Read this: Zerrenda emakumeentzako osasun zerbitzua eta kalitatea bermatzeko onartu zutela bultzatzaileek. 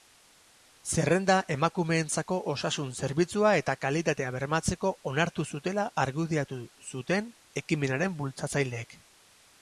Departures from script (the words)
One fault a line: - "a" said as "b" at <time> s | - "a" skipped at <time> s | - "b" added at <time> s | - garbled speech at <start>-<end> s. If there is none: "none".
- "argudiatu zuten ekimenaren" added at 6.0 s